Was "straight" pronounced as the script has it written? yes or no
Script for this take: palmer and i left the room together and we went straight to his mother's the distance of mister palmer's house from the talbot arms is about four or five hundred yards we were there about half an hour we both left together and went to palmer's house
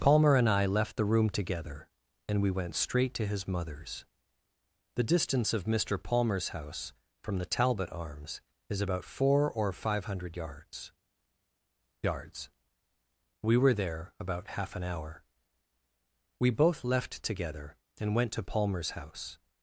yes